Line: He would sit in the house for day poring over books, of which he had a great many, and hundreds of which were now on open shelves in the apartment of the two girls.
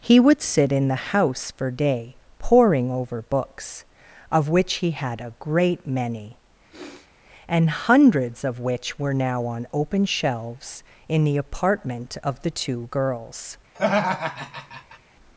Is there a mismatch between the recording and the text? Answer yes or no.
no